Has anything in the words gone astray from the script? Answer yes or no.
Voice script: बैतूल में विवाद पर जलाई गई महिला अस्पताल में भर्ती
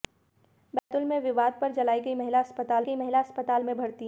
yes